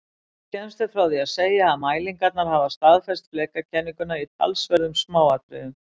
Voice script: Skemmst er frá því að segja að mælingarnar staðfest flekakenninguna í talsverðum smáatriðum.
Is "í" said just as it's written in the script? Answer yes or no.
yes